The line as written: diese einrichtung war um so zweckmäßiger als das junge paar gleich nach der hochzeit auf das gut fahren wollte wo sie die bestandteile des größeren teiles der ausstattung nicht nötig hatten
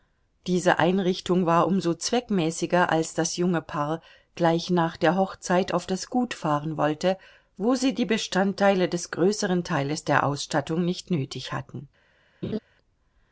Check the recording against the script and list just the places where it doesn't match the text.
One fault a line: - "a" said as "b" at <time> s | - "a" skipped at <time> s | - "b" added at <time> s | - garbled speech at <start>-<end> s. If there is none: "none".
none